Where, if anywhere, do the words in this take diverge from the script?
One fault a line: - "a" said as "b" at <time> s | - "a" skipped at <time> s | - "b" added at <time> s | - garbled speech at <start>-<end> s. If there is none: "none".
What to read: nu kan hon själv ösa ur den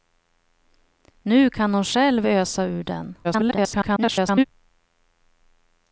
- garbled speech at 3.2-4.4 s